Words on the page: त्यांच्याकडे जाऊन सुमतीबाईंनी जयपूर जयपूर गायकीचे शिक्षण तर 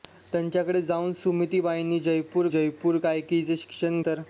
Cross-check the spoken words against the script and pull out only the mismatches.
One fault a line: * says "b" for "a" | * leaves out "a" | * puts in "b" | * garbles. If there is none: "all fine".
all fine